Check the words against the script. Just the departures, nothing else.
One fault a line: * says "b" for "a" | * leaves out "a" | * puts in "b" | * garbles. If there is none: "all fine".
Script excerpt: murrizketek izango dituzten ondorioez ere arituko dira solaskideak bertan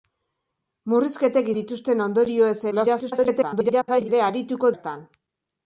* leaves out "izango"
* garbles
* leaves out "dira solaskideak"